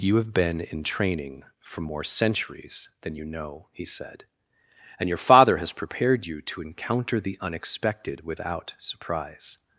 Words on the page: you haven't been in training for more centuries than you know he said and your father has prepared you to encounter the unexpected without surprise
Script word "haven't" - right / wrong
wrong